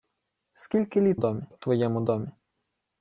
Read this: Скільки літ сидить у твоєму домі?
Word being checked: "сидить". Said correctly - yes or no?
no